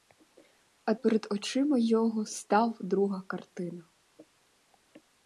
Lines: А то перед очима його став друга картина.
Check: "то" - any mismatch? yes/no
yes